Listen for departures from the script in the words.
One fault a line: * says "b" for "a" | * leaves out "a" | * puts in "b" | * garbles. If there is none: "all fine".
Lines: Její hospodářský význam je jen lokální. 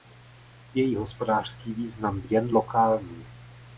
* leaves out "je"